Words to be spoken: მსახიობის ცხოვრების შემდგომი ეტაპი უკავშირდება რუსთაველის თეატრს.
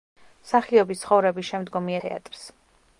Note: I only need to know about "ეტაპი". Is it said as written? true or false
false